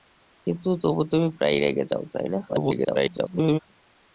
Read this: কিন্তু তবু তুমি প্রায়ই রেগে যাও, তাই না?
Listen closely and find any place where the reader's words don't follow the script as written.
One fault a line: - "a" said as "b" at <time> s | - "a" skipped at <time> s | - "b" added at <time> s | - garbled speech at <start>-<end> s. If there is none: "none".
- garbled speech at 2.5-3.6 s